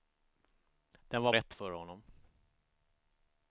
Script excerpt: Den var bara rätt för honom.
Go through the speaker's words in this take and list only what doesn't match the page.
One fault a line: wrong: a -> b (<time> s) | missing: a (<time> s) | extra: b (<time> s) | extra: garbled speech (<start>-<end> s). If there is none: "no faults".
missing: bara (1.3 s)